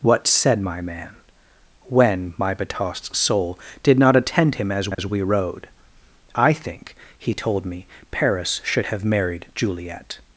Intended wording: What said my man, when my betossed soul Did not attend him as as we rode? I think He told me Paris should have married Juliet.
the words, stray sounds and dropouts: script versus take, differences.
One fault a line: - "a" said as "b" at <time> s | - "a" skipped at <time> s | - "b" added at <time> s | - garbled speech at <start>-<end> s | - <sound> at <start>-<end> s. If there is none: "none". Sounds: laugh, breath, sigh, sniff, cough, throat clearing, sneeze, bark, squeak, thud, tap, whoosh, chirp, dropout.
- dropout at 4.9-5.0 s